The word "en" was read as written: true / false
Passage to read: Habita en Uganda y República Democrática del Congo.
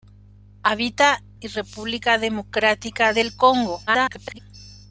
false